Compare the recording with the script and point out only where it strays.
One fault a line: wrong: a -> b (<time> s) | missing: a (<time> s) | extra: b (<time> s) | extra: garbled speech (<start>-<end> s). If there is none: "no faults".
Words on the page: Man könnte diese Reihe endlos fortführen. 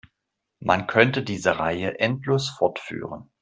no faults